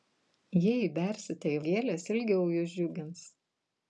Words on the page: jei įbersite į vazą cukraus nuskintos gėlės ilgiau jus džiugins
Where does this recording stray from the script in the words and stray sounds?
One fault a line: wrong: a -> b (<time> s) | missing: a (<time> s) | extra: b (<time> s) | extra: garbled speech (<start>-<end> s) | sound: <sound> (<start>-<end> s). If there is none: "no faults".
missing: vazą cukraus nuskintos (1.6 s)